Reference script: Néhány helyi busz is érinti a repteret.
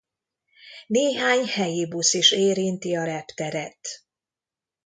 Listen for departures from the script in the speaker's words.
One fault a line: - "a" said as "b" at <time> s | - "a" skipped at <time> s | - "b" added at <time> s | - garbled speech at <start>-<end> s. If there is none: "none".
none